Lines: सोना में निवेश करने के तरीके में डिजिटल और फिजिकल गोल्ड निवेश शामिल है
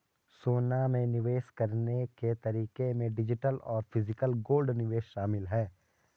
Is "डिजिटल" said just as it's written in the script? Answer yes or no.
yes